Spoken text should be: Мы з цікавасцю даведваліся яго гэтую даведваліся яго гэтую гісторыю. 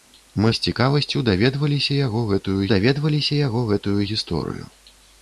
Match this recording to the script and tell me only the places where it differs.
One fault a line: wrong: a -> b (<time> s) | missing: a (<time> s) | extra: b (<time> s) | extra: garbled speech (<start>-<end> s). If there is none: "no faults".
no faults